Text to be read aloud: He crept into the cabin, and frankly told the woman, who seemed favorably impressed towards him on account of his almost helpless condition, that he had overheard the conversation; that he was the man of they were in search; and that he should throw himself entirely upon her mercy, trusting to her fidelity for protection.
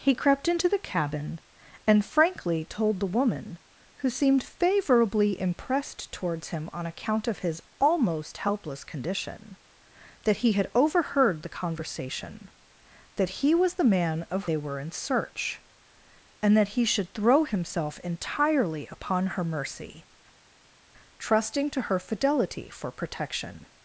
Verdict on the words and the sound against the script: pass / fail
pass